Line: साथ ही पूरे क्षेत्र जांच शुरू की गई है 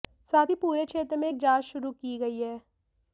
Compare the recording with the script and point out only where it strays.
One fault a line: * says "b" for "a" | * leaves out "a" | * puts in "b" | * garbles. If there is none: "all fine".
* puts in "में एक"